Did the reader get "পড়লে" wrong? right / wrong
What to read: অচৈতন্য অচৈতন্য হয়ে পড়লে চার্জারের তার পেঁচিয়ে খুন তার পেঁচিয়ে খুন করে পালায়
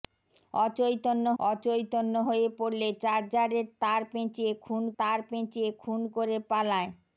right